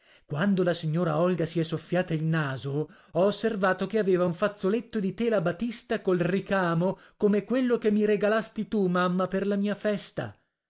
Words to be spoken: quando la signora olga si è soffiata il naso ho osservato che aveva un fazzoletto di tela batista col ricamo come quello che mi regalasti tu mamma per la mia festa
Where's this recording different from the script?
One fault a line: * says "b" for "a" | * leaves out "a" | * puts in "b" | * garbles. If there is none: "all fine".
all fine